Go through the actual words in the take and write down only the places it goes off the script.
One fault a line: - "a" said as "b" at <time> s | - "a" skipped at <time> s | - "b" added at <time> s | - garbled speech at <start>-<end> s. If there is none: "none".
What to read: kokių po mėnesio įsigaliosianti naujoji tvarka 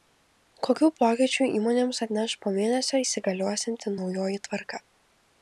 - "pokyčių įmonėms atneš" added at 1.0 s